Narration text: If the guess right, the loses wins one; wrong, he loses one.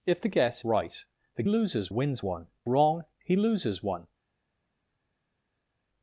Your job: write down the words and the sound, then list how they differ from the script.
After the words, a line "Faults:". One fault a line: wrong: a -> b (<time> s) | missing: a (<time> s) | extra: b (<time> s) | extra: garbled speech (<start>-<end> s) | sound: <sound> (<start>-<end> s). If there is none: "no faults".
If the guess right, the loses wins one; wrong, he loses one.
Faults:
no faults